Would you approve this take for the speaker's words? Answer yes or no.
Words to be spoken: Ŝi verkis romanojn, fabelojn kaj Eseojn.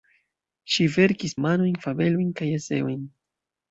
yes